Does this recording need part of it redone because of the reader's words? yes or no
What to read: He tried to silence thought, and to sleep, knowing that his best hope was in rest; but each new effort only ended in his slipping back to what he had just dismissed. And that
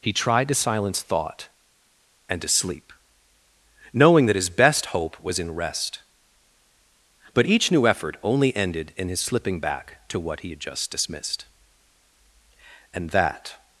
no